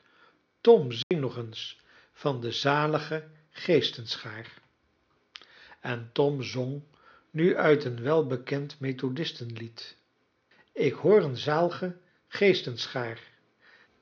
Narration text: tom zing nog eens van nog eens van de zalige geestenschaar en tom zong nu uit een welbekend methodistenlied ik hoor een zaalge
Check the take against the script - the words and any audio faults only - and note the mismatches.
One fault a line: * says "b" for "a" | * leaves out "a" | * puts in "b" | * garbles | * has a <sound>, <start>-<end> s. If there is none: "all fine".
* has a dropout, 1.0-1.1 s
* leaves out "nog eens van"